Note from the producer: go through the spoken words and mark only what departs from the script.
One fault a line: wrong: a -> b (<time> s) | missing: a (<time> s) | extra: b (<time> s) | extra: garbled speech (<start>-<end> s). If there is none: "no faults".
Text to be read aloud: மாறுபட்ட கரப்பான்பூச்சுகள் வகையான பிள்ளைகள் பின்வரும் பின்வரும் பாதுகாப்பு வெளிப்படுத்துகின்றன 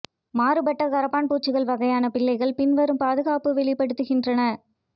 missing: பின்வரும் (3.0 s)